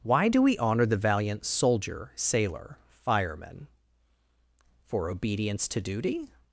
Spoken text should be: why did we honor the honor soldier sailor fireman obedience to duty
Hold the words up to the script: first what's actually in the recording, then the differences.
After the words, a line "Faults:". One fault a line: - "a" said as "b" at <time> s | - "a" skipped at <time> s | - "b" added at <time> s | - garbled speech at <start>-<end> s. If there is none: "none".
why do we honor the valiant soldier sailor fireman for obedience to duty
Faults:
- "did" said as "do" at 0.3 s
- "honor" said as "valiant" at 1.0 s
- "for" added at 4.8 s